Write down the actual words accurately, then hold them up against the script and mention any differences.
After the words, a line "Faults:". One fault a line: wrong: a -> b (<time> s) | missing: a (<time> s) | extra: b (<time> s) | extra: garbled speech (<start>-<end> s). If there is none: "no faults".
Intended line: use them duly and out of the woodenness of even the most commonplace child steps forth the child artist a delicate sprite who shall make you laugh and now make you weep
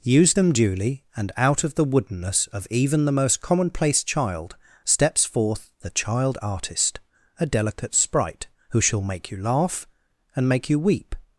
use them duly and out of the woodenness of even the most commonplace child steps forth the child artist a delicate sprite who shall make you laugh and make you weep
Faults:
missing: now (10.5 s)